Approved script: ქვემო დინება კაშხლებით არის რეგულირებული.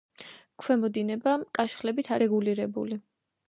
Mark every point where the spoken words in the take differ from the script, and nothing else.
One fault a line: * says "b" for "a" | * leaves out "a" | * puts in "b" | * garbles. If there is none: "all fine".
* leaves out "არის"